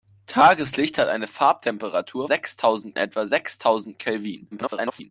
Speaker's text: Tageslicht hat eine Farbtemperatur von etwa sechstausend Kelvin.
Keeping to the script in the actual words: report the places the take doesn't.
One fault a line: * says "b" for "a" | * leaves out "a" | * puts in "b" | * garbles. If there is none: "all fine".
* says "sechstausend" for "von"
* garbles